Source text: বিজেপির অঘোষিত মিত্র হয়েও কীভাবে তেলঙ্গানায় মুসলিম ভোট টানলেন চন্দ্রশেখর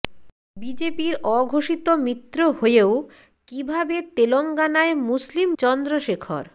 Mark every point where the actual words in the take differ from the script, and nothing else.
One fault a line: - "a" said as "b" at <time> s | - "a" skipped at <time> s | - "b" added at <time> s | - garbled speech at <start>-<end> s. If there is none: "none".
- "ভোট টানলেন" skipped at 5.5 s